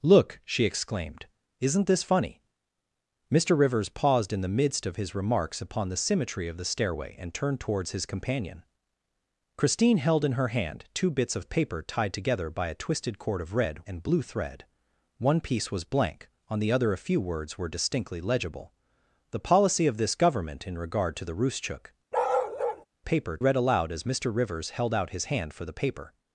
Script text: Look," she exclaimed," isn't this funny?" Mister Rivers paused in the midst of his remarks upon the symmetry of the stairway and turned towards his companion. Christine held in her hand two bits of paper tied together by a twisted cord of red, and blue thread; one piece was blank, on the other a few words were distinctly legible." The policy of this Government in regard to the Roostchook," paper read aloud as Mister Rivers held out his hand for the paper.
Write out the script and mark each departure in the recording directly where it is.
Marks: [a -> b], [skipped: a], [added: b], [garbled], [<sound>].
Look," she exclaimed," isn't this funny?" Mister Rivers paused in the midst of his remarks upon the symmetry of the stairway and turned towards his companion. Christine held in her hand two bits of paper tied together by a twisted cord of red, and blue thread; one piece was blank, on the other a few words were distinctly legible." The policy of this Government in regard to the Roostchook," [bark] paper read aloud as Mister Rivers held out his hand for the paper.